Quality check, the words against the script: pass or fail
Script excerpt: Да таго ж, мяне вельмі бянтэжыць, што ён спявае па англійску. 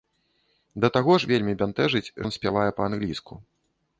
fail